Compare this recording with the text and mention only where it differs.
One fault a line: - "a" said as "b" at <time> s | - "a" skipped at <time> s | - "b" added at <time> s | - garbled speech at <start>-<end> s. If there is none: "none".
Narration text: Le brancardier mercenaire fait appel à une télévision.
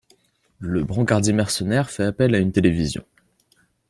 none